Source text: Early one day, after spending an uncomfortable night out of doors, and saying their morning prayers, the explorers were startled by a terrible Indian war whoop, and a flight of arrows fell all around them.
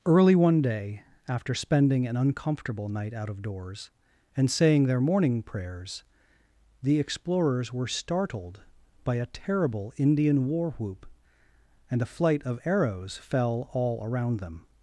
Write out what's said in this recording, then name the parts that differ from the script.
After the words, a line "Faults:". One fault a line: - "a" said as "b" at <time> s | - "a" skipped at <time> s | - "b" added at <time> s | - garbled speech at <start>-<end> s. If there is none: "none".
Early one day, after spending an uncomfortable night out of doors, and saying their morning prayers, the explorers were startled by a terrible Indian war whoop, and a flight of arrows fell all around them.
Faults:
none